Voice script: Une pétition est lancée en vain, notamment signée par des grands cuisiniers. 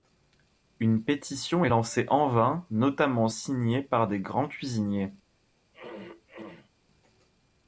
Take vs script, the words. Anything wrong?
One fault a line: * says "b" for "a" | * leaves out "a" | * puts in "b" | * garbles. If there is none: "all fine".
all fine